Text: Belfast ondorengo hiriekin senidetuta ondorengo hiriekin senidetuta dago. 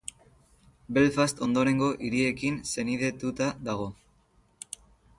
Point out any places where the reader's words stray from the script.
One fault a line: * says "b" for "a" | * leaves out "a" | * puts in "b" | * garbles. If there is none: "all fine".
* leaves out "ondorengo hiriekin senidetuta"